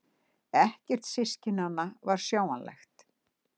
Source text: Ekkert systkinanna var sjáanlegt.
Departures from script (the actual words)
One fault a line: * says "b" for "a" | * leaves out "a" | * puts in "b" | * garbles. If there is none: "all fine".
all fine